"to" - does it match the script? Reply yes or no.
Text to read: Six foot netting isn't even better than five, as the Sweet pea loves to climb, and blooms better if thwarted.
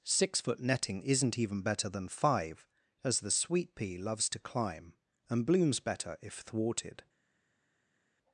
yes